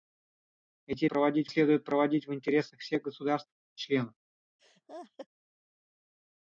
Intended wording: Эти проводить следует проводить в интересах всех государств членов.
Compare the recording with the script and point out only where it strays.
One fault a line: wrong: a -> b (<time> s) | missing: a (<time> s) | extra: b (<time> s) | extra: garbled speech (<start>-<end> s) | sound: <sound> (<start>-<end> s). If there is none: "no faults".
sound: laugh (4.6-5.3 s)